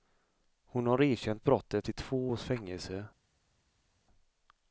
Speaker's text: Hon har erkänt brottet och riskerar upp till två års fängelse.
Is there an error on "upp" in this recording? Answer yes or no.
yes